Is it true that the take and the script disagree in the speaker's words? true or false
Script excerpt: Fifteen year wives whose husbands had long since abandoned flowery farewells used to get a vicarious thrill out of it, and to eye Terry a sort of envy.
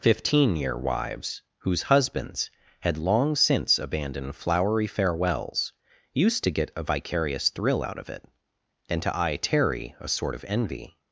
false